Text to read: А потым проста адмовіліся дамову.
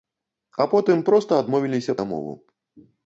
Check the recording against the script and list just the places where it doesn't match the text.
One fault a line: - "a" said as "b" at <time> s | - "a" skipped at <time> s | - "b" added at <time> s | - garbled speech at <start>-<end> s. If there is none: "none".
none